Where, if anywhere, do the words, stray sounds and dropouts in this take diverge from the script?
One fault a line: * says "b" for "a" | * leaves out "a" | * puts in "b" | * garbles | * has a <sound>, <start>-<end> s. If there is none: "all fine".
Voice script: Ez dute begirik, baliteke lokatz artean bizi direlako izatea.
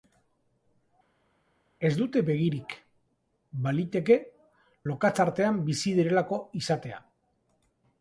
all fine